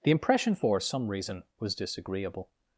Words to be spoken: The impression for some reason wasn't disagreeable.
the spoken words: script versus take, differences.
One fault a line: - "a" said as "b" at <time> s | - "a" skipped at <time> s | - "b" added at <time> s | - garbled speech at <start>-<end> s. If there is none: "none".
- "wasn't" said as "was" at 1.6 s